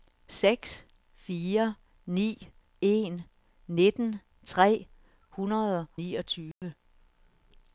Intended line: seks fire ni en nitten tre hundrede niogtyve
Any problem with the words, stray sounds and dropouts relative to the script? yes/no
yes